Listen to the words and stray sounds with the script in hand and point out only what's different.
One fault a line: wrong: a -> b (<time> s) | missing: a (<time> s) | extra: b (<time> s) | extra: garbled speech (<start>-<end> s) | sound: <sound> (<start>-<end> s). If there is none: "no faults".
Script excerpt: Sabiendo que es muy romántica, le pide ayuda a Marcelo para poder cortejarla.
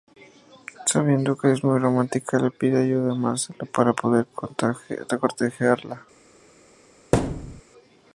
sound: thud (7.1-7.6 s)